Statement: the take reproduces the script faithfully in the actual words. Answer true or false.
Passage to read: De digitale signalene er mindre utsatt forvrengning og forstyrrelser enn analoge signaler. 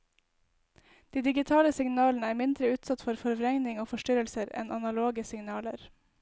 false